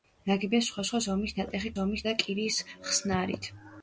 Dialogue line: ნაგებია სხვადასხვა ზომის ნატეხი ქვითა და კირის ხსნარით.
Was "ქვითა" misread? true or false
true